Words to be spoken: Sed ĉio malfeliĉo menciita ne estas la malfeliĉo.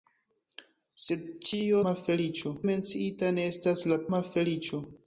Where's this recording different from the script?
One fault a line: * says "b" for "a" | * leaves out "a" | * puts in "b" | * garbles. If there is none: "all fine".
all fine